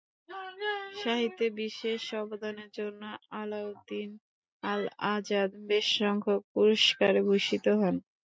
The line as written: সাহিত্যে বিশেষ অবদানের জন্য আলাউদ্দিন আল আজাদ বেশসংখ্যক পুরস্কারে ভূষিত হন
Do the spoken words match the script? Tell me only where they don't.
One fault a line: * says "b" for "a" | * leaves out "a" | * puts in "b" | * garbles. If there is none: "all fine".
all fine